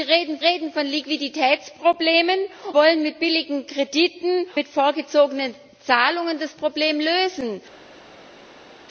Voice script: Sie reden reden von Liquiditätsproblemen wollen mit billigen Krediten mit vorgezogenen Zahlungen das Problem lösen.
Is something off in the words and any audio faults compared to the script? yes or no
no